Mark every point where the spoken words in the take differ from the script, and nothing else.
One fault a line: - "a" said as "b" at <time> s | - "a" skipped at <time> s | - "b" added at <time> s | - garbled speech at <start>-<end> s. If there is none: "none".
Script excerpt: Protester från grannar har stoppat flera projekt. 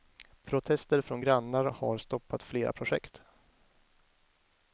none